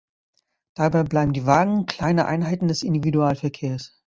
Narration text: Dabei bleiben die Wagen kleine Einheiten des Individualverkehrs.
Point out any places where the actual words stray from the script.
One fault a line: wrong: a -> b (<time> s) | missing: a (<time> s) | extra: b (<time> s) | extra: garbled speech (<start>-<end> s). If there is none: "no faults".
no faults